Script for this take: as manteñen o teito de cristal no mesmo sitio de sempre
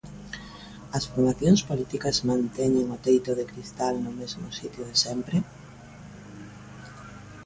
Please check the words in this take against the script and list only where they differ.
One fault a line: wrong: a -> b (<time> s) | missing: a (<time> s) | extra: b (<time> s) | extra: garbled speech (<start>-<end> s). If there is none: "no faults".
extra: formacións políticas (1.1 s)